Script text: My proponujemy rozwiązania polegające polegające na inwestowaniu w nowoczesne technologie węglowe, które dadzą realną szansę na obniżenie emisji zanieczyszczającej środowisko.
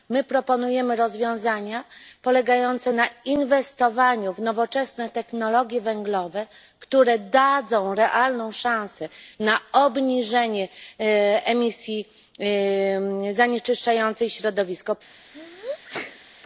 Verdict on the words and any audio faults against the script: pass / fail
fail